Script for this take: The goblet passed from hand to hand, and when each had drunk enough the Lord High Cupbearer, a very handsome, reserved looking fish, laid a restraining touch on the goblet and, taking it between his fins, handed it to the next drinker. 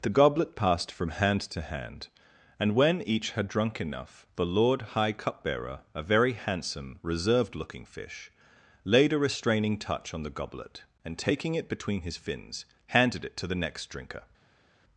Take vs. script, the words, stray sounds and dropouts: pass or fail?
pass